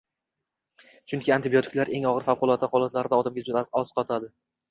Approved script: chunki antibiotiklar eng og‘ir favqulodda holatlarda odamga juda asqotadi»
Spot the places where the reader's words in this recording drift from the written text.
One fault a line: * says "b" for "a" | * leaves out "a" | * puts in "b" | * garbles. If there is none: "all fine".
all fine